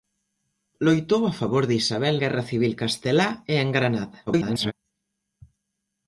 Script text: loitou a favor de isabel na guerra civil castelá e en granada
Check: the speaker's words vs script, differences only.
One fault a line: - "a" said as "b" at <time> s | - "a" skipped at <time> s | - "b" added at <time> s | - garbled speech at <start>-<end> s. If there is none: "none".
- "na" skipped at 2.1 s
- garbled speech at 4.3-4.7 s